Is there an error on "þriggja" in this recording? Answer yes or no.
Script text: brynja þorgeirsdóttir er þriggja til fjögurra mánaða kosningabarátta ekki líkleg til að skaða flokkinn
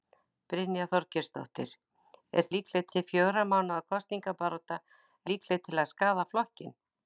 yes